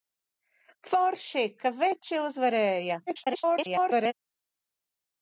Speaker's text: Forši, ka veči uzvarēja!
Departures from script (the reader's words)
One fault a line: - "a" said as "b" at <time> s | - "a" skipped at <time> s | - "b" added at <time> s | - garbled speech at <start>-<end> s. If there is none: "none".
- garbled speech at 3.1-4.1 s